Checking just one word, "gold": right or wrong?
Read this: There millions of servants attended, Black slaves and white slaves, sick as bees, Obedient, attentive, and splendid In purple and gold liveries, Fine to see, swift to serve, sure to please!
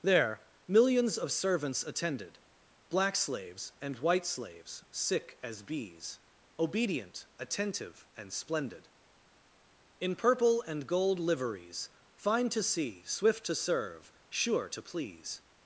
right